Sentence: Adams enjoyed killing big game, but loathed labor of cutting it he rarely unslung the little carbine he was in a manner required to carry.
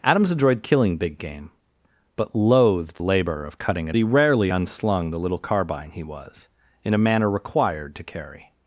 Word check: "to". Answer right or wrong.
right